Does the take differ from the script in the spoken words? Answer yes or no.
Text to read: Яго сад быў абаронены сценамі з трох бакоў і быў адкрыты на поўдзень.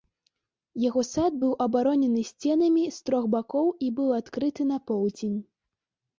no